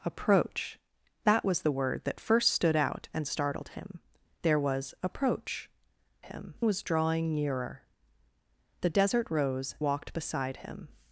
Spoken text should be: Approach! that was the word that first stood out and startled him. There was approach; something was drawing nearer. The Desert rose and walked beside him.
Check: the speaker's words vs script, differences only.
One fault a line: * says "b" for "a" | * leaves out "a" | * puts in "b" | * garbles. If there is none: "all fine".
* says "him" for "something"
* leaves out "and"